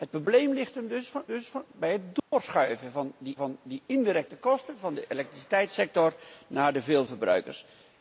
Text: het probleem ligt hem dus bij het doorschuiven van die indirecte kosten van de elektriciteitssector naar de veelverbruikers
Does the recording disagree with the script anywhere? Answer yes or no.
yes